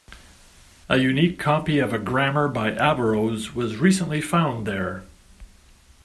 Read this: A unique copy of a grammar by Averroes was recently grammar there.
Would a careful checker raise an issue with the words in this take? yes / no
yes